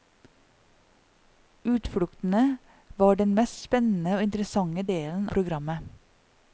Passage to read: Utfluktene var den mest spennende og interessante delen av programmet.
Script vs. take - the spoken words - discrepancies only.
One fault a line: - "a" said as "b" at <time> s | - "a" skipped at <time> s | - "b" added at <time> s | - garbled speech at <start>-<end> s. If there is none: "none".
- "av" skipped at 5.3 s